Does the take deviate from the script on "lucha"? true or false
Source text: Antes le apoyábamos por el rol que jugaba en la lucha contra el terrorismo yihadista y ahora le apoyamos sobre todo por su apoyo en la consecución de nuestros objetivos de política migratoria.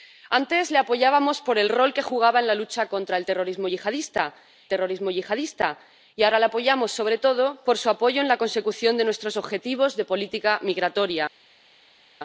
false